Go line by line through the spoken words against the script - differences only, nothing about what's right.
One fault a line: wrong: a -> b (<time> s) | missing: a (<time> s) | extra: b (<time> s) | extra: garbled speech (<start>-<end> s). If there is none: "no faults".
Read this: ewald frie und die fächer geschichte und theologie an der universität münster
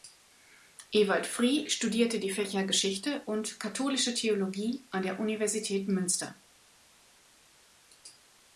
wrong: und -> studierte (1.7 s)
extra: katholische (3.6 s)